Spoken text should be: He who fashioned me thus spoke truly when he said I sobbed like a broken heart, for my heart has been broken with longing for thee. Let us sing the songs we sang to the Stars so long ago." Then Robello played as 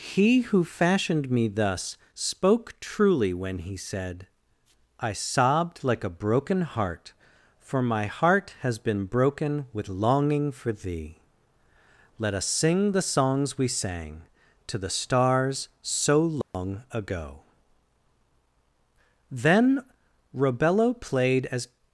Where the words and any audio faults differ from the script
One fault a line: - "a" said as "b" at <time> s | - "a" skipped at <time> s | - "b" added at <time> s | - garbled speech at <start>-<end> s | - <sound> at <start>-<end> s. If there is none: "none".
- dropout at 16.4-16.5 s